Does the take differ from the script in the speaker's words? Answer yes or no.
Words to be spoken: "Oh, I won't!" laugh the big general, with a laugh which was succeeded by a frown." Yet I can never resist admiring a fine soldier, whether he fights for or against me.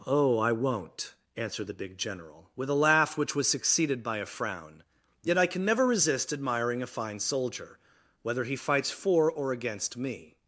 yes